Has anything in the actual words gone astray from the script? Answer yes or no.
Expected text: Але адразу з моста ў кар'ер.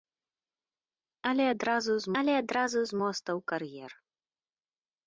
yes